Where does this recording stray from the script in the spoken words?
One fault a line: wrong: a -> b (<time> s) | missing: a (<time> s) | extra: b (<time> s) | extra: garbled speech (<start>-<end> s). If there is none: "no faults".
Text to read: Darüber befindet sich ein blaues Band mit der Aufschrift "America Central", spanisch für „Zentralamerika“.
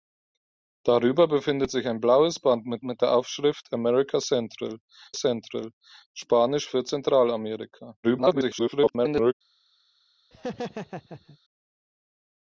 extra: mit (2.8 s)
extra: Central (5.1 s)
extra: garbled speech (8.0-9.3 s)